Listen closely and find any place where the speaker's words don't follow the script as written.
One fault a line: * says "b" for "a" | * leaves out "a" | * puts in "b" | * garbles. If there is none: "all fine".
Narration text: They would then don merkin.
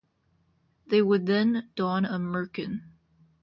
* puts in "a"